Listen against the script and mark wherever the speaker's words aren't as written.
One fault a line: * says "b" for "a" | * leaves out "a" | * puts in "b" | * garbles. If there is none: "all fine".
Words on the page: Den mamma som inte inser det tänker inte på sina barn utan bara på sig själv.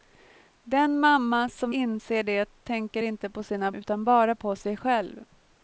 * leaves out "inte"
* leaves out "barn"